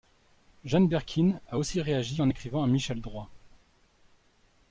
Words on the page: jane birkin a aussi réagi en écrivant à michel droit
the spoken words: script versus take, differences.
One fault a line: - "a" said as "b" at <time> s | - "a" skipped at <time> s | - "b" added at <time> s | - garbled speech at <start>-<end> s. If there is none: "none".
none